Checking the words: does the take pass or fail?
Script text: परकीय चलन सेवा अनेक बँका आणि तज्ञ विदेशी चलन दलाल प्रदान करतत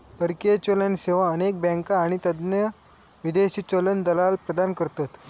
pass